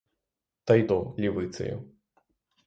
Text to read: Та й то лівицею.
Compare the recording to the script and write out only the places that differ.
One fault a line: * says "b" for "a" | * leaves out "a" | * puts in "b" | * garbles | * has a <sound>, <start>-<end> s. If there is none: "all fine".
all fine